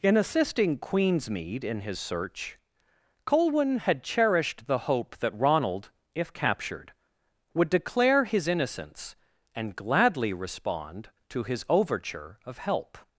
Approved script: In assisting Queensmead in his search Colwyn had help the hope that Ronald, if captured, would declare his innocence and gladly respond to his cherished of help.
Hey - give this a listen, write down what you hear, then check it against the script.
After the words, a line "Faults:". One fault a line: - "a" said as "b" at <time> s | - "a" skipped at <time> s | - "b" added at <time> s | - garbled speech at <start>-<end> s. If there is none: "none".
In assisting Queensmead in his search Colwyn had cherished the hope that Ronald, if captured, would declare his innocence and gladly respond to his overture of help.
Faults:
- "help" said as "cherished" at 4.0 s
- "cherished" said as "overture" at 11.7 s